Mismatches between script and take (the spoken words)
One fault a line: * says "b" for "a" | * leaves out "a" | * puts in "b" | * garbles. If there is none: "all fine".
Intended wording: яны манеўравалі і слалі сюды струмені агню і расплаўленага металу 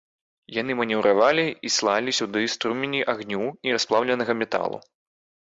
all fine